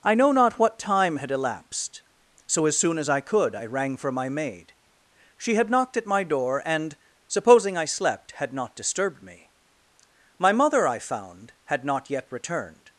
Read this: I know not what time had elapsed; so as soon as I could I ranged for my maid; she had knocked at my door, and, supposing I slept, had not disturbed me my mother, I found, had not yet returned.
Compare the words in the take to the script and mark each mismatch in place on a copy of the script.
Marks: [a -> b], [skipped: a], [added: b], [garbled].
I know not what time had elapsed; so as soon as I could I [ranged -> rang] for my maid; she had knocked at my door, and, supposing I slept, had not disturbed me my mother, I found, had not yet returned.